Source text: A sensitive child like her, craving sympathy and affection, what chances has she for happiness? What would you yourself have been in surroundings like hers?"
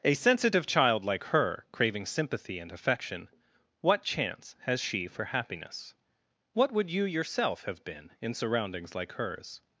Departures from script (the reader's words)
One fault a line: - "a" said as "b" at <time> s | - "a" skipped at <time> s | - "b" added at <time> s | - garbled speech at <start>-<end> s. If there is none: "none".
- "chances" said as "chance" at 4.0 s